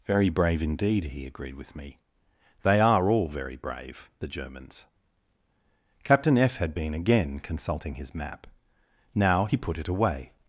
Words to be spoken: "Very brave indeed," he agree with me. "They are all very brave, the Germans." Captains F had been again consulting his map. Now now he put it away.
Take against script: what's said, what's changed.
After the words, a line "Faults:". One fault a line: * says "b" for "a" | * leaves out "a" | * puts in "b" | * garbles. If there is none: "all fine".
"Very brave indeed," he agreed with me. "They are all very brave, the Germans." Captain F had been again consulting his map. Now he put it away.
Faults:
* says "agreed" for "agree"
* says "Captain" for "Captains"
* leaves out "now"